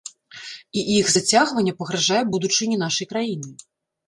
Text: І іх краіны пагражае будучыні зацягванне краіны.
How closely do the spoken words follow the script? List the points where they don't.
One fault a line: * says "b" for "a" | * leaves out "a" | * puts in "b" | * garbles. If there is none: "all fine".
* says "зацягванне" for "краіны"
* says "нашай" for "зацягванне"